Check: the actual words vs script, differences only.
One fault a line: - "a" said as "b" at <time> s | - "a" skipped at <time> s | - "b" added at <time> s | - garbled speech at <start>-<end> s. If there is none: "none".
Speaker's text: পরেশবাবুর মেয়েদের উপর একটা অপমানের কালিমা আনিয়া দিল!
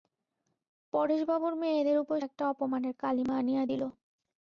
none